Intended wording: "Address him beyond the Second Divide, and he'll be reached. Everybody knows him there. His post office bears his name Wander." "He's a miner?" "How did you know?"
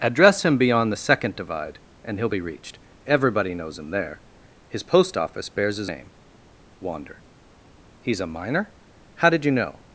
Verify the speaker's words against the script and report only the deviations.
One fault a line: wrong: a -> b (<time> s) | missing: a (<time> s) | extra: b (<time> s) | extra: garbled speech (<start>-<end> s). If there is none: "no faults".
no faults